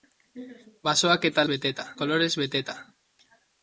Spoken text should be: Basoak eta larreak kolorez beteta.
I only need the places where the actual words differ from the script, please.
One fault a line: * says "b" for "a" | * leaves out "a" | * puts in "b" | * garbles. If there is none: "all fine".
* says "beteta" for "larreak"